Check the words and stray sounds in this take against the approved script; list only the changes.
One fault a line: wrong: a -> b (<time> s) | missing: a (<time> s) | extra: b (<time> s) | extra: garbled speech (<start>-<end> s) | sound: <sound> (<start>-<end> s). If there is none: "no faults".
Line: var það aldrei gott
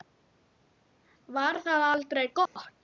sound: dropout (2.5-2.6 s)